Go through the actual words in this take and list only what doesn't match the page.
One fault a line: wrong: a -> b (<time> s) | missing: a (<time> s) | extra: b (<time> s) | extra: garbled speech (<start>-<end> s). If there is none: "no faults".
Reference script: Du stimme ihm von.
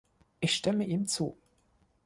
wrong: Du -> Ich (0.4 s)
wrong: von -> zu (1.1 s)